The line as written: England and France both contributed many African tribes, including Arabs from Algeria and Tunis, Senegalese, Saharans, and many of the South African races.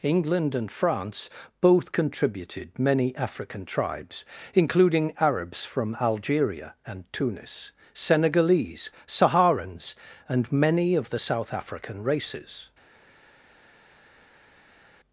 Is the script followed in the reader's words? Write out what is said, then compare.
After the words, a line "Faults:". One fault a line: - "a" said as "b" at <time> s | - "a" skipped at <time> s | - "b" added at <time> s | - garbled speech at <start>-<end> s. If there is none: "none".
England and France both contributed many African tribes, including Arabs from Algeria and Tunis, Senegalese, Saharans, and many of the South African races.
Faults:
none